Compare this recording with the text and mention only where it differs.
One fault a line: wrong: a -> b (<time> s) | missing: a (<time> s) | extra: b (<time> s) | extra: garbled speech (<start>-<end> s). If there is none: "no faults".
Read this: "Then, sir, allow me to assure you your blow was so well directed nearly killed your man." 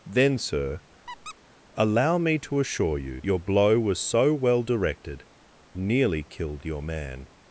no faults